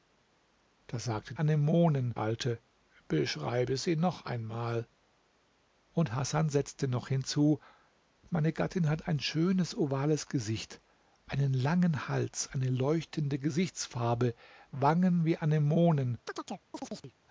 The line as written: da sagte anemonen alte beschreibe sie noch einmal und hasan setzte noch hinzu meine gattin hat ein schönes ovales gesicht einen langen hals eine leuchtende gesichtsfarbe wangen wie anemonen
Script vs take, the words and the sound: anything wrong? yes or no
yes